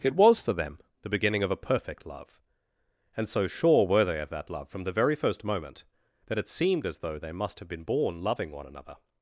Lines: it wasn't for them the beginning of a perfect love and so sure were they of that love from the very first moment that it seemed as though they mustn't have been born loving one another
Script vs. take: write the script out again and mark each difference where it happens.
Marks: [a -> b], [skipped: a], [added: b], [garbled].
it [wasn't -> was] for them the beginning of a perfect love and so sure were they of that love from the very first moment that it seemed as though they [mustn't -> must] have been born loving one another